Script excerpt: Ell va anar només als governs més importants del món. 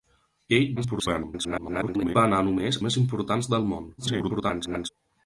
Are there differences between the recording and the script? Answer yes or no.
yes